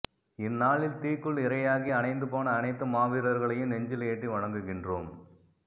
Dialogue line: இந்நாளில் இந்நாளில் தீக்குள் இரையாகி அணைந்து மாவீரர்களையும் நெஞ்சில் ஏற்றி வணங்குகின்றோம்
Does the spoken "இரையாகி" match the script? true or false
true